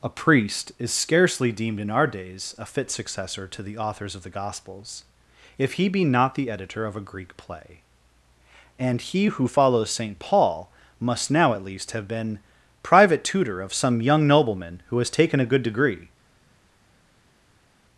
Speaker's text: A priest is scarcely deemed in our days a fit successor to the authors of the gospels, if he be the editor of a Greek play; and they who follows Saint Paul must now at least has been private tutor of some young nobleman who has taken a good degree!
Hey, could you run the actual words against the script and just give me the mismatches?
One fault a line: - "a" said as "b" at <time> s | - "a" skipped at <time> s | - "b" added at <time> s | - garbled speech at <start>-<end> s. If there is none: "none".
- "not" added at 6.1 s
- "they" said as "he" at 9.0 s
- "has" said as "have" at 11.9 s